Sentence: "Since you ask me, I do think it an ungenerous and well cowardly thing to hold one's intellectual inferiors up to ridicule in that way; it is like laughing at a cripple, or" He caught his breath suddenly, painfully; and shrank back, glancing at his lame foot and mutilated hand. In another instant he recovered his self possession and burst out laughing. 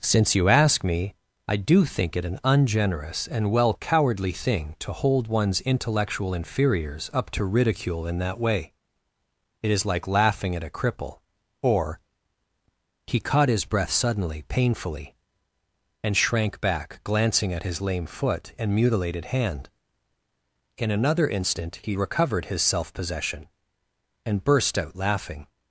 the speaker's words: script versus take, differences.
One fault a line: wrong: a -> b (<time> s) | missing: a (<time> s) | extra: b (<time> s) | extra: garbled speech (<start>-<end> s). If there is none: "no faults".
no faults